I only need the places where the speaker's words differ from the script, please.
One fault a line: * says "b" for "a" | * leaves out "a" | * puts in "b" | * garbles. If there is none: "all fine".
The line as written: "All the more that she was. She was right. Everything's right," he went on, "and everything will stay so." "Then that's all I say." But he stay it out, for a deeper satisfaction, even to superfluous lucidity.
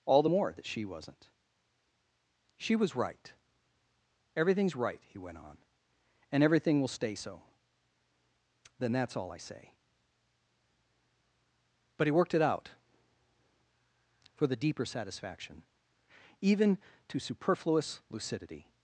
* says "wasn't" for "was"
* says "worked" for "stay"
* says "the" for "a"